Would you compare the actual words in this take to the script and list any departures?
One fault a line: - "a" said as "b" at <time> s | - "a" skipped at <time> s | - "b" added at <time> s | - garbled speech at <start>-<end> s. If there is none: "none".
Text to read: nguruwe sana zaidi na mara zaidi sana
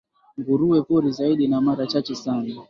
- "sana" said as "pori" at 0.8 s
- "zaidi" said as "chache" at 1.9 s